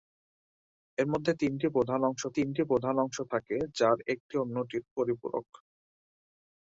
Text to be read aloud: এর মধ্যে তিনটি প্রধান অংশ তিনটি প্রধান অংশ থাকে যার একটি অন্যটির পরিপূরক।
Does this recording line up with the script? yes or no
yes